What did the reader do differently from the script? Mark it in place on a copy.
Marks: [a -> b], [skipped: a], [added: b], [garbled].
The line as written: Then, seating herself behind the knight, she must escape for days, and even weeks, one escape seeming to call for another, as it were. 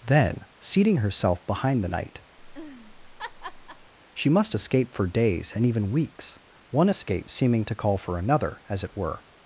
Then, seating herself behind the knight, she must escape for days, and even weeks, one escape seeming to call for another, as it were.